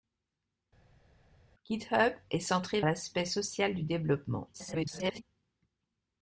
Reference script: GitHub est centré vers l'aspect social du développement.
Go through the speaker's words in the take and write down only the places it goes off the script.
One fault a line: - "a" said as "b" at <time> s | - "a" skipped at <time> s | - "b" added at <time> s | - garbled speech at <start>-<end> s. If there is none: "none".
- "vers" skipped at 2.8 s
- garbled speech at 4.5-5.2 s